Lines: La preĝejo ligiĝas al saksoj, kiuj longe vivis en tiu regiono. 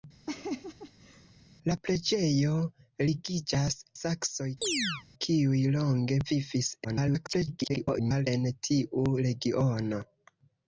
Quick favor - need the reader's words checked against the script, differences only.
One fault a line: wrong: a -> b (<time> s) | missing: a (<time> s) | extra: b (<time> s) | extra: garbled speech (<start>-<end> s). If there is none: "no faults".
missing: al (3.8 s)
extra: garbled speech (6.8-8.3 s)